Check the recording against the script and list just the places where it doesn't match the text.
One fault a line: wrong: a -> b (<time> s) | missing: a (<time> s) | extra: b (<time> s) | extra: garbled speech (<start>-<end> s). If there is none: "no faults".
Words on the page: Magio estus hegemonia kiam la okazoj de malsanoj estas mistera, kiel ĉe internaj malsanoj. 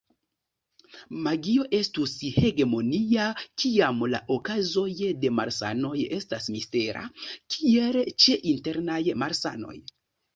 no faults